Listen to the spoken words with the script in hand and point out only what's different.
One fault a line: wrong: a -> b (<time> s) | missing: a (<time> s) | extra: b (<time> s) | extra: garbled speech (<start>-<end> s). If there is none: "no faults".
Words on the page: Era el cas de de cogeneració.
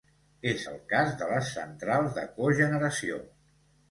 wrong: Era -> És (0.5 s)
extra: les centrals (1.3 s)